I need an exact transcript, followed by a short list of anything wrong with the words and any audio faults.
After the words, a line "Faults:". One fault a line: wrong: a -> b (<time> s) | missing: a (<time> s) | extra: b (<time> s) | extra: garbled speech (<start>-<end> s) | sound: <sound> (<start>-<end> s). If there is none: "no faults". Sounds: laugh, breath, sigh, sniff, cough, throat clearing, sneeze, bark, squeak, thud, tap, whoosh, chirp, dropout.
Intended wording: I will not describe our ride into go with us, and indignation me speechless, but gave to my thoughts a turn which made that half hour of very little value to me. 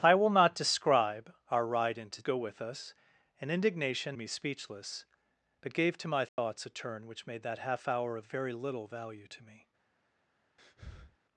I will not describe our ride into go with us, and indignation me speechless, but gave to my thoughts a turn which made that half hour of very little value to me.
Faults:
sound: dropout (6.3-6.4 s)
sound: breath (10.6-11.2 s)